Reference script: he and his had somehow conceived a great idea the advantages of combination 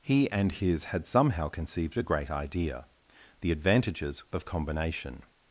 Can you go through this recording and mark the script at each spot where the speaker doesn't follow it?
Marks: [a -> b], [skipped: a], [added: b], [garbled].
he and his had somehow conceived a great idea the advantages of combination